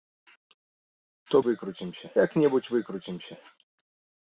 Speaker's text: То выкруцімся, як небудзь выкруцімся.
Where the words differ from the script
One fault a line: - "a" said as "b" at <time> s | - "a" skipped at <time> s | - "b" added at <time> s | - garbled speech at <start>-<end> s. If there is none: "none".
none